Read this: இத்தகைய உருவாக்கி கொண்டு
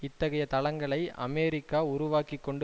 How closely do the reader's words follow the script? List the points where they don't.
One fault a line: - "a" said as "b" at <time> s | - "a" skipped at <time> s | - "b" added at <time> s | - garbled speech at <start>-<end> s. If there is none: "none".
- "தளங்களை அமெரிக்கா" added at 0.5 s